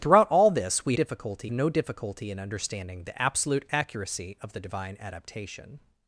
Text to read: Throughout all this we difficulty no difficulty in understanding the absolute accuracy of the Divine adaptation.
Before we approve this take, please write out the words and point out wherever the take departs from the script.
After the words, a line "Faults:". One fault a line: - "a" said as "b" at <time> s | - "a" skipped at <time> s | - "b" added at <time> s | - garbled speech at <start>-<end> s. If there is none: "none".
Throughout all this we difficulty no difficulty in understanding the absolute accuracy of the Divine adaptation.
Faults:
none